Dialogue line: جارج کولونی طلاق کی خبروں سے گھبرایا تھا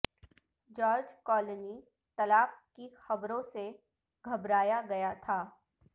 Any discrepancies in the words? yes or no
yes